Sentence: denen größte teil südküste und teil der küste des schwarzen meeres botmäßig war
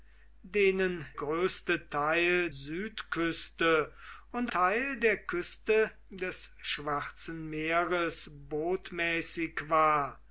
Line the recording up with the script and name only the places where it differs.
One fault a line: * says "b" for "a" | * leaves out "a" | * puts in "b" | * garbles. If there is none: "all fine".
all fine